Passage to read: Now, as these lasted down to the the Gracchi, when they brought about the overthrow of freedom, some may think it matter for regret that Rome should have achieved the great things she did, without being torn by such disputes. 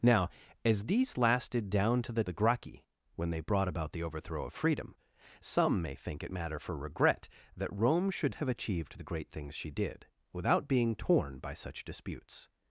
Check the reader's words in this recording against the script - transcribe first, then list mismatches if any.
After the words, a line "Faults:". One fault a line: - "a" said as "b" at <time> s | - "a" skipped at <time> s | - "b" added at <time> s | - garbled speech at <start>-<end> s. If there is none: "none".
Now, as these lasted down to the the Gracchi, when they brought about the overthrow of freedom, some may think it matter for regret that Rome should have achieved the great things she did, without being torn by such disputes.
Faults:
none